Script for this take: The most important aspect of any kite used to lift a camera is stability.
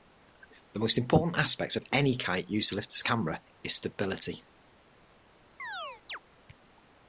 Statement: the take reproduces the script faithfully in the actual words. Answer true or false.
true